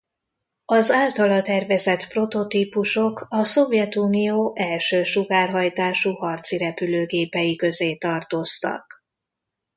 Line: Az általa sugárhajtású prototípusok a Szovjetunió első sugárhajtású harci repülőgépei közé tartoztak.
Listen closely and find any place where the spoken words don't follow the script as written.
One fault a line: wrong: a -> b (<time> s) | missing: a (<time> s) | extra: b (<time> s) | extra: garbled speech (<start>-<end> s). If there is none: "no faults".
wrong: sugárhajtású -> tervezett (1.4 s)